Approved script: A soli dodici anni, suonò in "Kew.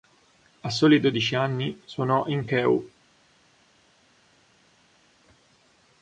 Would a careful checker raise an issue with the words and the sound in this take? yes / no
no